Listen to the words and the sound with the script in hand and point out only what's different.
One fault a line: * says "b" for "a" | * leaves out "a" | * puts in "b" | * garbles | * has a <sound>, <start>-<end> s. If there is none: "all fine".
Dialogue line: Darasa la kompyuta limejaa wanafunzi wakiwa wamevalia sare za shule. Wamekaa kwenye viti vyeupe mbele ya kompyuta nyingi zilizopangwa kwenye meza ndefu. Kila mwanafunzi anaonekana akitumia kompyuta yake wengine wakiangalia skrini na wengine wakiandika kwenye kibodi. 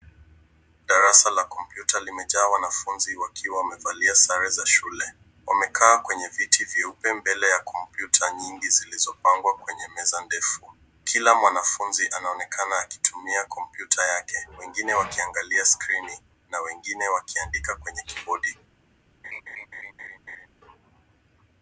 * has a laugh, 19.2-20.5 s